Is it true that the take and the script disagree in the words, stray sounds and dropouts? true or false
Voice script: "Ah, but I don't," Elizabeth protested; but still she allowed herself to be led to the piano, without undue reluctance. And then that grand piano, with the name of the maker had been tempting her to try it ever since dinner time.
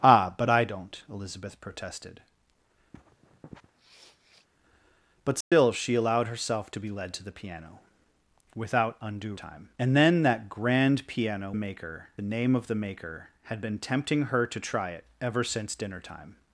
true